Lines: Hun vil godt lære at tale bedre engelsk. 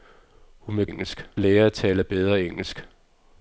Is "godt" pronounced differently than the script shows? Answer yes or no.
yes